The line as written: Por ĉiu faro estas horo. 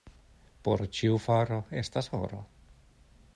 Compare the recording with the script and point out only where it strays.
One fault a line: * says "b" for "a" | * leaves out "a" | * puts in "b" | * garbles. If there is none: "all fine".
all fine